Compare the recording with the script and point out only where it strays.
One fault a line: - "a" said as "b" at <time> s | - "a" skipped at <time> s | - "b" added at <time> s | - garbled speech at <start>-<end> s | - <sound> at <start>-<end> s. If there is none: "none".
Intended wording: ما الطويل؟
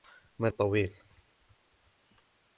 none